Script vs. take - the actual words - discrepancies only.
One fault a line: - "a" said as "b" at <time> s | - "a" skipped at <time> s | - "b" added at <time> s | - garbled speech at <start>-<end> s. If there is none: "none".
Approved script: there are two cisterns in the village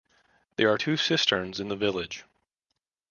none